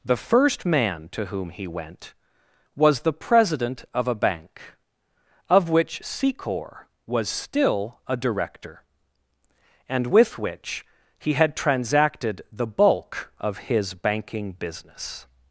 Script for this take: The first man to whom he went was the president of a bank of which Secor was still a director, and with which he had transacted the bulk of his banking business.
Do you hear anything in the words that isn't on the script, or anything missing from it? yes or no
no